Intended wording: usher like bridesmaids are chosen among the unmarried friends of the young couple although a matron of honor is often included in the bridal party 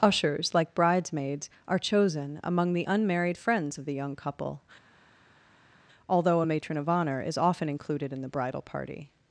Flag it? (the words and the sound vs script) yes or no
yes